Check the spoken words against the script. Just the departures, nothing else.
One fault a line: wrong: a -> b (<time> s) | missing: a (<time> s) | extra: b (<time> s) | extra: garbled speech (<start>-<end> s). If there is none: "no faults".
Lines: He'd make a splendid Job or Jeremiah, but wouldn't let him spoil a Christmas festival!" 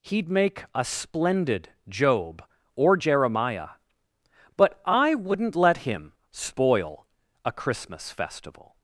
extra: I (4.8 s)